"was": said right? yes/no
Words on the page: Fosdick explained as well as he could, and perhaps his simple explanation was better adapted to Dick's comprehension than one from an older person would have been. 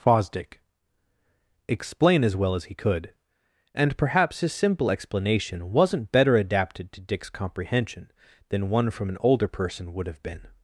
no